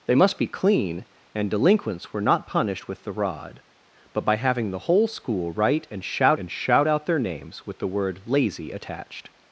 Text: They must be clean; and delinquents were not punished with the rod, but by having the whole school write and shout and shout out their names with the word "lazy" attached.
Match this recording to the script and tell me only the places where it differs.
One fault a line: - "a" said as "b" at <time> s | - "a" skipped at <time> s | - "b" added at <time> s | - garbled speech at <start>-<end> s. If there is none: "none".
none